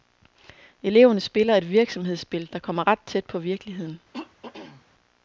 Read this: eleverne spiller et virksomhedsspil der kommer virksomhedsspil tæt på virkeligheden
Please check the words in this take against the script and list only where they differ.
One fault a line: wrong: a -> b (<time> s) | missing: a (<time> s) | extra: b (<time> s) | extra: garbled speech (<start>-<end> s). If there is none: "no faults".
wrong: virksomhedsspil -> ret (2.9 s)